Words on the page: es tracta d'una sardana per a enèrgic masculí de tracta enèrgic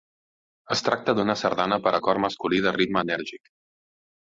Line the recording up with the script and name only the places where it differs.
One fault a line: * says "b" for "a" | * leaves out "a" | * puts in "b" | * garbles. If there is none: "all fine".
* says "cor" for "enèrgic"
* says "ritme" for "tracta"